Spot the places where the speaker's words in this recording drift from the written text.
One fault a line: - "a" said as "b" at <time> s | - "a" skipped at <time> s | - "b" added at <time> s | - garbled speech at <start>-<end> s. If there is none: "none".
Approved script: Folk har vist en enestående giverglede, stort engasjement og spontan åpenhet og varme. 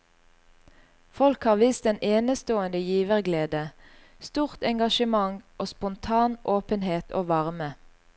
none